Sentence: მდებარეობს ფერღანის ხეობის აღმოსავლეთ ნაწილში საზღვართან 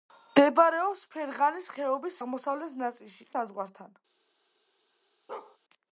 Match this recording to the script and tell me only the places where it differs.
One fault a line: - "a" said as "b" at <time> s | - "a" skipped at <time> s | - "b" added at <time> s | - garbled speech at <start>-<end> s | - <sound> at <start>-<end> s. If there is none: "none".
- bark at 5.3-5.6 s